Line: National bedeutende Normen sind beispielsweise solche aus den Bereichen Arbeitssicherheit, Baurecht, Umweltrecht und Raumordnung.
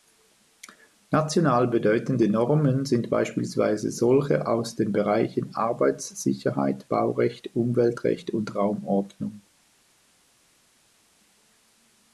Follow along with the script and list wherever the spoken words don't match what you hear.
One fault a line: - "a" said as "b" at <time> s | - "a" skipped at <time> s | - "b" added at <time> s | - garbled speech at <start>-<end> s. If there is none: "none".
none